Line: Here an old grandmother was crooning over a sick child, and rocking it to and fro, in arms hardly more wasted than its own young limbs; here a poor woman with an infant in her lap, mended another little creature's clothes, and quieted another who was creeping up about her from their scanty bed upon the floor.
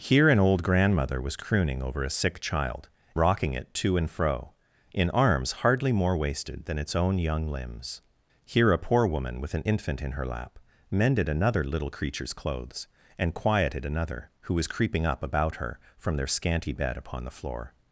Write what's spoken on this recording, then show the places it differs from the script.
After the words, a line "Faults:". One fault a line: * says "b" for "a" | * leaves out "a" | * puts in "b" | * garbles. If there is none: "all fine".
Here an old grandmother was crooning over a sick child, rocking it to and fro, in arms hardly more wasted than its own young limbs; here a poor woman with an infant in her lap, mended another little creature's clothes, and quieted another who was creeping up about her from their scanty bed upon the floor.
Faults:
* leaves out "and"